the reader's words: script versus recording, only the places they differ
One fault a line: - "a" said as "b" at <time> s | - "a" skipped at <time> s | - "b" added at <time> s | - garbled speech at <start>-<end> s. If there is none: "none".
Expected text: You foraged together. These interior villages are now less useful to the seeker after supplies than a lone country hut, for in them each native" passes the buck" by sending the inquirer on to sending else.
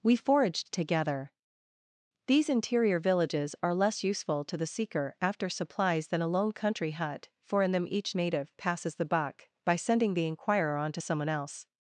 - "You" said as "We" at 0.0 s
- "now" skipped at 3.8 s
- "sending" said as "someone" at 11.0 s